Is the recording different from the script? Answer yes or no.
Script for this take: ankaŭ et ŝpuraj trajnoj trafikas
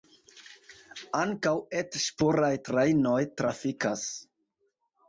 no